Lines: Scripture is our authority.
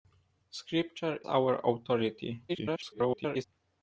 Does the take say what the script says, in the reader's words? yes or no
no